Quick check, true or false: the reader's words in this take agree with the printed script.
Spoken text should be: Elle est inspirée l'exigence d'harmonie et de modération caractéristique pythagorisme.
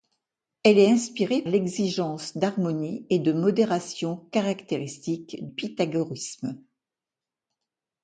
true